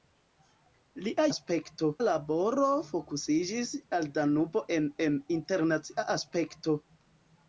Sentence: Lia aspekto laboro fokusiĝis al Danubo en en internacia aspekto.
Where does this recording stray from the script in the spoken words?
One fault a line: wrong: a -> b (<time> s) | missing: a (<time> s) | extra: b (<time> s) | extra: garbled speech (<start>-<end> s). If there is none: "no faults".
no faults